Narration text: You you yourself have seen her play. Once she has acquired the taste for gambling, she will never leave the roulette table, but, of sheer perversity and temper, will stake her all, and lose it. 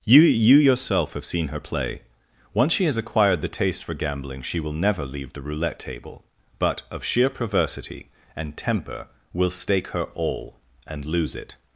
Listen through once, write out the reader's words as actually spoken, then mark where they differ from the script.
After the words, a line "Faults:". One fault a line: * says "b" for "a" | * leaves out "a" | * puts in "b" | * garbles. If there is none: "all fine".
You you yourself have seen her play. Once she has acquired the taste for gambling, she will never leave the roulette table, but, of sheer perversity and temper, will stake her all, and lose it.
Faults:
all fine